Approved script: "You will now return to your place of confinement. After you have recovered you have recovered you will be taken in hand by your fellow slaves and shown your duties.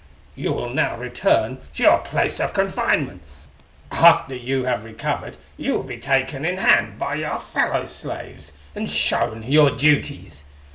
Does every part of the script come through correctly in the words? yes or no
no